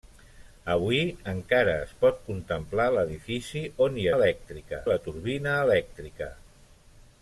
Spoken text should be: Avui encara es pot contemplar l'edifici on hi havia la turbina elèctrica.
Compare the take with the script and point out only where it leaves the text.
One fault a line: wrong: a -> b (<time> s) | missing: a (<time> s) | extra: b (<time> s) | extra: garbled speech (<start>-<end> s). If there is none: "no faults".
wrong: havia -> elèctrica (4.1 s)